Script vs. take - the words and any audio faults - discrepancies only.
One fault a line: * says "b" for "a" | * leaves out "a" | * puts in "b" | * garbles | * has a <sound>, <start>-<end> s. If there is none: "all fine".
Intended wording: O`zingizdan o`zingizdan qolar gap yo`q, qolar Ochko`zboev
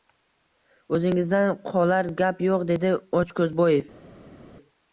* leaves out "o`zingizdan"
* says "dedi" for "qolar"